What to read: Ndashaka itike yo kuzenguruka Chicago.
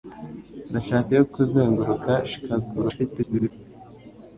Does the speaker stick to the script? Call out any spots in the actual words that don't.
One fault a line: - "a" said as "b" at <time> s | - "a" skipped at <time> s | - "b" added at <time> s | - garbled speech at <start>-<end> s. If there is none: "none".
- "itike" skipped at 1.1 s
- garbled speech at 2.7-3.5 s